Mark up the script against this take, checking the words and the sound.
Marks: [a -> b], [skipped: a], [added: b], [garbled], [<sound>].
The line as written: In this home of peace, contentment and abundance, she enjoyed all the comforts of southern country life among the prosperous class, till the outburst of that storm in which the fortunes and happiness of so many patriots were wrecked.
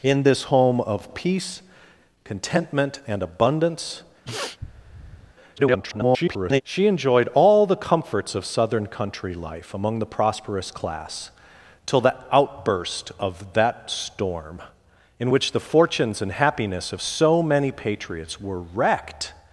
In this home of peace, contentment and abundance, [sniff] [garbled] she enjoyed all the comforts of southern country life among the prosperous class, till the outburst of that storm in which the fortunes and happiness of so many patriots were wrecked.